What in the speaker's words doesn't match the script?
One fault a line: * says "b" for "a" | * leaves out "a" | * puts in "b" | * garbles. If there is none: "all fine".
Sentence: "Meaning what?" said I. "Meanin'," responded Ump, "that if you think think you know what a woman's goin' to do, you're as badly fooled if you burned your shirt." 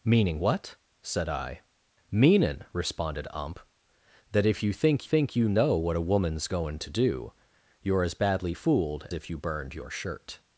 all fine